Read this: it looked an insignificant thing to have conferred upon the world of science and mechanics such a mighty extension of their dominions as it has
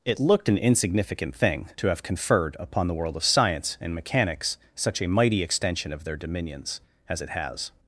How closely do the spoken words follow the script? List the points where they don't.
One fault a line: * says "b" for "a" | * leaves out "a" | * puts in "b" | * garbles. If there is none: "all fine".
all fine